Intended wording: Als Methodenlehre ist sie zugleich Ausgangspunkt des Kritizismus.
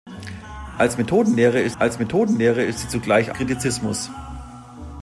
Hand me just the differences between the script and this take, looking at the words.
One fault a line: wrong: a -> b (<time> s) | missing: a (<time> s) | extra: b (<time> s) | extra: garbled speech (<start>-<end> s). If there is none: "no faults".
extra: als Methodenlehre ist (1.8 s)
missing: Ausgangspunkt des (3.4 s)